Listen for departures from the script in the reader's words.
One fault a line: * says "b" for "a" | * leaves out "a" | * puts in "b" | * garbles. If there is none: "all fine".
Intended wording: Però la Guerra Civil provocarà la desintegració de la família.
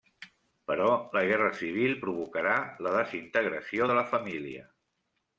all fine